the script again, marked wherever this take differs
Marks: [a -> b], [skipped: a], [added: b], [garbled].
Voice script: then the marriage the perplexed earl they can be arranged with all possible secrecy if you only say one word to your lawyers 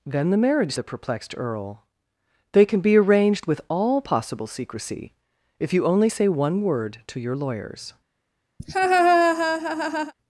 then the marriage the perplexed earl they can be arranged with all possible secrecy if you only say one word to your lawyers